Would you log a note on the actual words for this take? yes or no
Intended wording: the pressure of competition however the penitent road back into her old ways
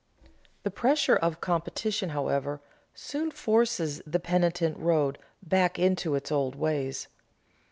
yes